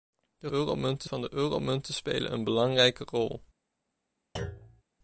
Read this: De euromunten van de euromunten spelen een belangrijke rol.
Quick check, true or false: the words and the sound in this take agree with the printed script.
false